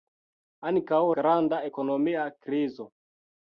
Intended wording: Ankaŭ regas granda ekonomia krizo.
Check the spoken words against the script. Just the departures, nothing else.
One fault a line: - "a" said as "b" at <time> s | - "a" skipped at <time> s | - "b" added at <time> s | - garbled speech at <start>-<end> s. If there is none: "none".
- "regas" skipped at 1.0 s